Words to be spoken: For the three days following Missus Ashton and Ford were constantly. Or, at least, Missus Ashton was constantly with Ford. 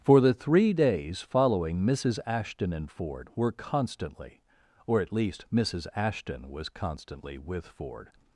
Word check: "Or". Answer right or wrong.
right